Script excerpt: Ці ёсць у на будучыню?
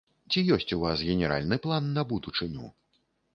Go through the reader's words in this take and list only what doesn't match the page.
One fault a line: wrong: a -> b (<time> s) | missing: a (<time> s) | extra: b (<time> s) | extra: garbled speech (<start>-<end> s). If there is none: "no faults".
extra: вас генеральны план (0.8 s)